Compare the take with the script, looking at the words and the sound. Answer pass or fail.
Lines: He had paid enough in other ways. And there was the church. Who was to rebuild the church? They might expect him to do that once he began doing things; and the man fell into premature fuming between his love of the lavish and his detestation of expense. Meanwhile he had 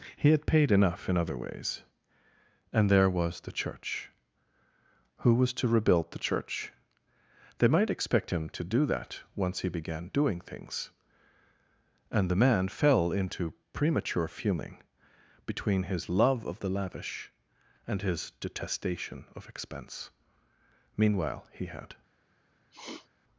fail